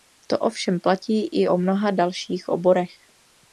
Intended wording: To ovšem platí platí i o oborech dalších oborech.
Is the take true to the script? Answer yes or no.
no